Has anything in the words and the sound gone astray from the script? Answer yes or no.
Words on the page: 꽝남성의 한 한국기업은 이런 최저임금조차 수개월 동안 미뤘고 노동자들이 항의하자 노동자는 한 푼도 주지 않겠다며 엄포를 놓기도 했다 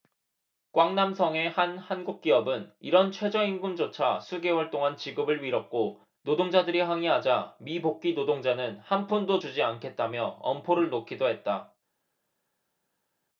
yes